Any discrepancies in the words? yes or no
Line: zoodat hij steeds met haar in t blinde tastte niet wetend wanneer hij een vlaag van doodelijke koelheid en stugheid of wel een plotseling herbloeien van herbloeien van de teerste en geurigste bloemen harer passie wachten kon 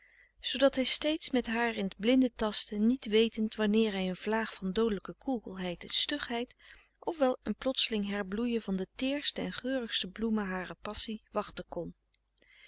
yes